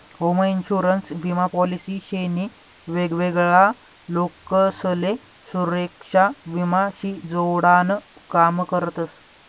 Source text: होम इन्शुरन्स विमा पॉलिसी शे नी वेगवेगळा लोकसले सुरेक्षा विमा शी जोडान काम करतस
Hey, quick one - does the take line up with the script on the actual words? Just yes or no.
yes